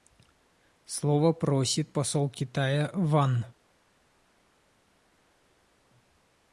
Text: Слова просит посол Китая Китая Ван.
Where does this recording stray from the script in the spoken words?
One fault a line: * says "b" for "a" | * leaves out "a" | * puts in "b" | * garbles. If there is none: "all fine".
* leaves out "Китая"